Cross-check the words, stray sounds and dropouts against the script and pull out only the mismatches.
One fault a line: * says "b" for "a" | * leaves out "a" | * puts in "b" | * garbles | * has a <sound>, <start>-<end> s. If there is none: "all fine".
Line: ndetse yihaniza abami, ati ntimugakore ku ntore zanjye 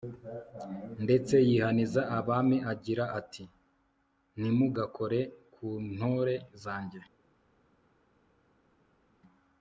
* puts in "agira"